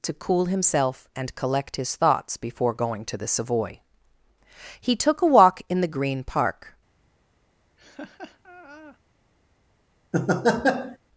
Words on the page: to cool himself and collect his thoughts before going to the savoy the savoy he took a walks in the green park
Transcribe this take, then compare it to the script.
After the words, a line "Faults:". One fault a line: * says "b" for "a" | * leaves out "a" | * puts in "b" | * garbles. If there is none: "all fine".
to cool himself and collect his thoughts before going to the savoy he took a walk in the green park
Faults:
* leaves out "the savoy"
* says "walk" for "walks"